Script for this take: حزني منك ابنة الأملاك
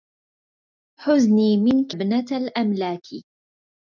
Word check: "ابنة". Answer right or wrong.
right